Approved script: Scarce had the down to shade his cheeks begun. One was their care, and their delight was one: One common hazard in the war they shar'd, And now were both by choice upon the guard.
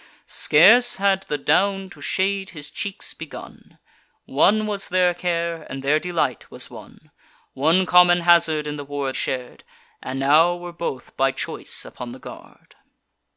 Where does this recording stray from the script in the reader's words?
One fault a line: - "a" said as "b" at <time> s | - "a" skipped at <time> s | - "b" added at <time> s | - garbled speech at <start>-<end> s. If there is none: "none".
- "they" skipped at 9.1 s